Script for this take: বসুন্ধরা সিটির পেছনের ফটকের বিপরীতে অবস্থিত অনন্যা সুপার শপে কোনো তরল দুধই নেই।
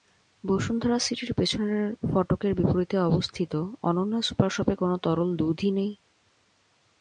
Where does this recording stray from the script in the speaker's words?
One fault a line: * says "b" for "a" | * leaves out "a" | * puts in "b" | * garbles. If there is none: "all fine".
all fine